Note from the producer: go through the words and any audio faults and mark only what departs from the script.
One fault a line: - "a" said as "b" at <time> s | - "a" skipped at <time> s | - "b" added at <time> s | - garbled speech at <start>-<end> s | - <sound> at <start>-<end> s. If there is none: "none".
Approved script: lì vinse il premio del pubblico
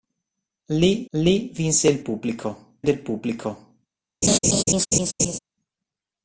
- "lì" added at 1.1 s
- "premio" said as "pubblico" at 2.0 s
- laugh at 4.2-5.4 s